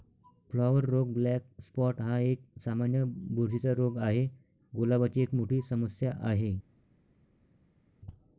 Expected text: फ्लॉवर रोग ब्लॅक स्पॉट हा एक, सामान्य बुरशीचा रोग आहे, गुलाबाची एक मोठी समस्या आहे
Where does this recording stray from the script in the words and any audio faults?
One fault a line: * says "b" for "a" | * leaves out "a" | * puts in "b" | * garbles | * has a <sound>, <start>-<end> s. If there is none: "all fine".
all fine